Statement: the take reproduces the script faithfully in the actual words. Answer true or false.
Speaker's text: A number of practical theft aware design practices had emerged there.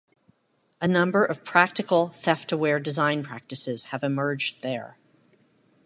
false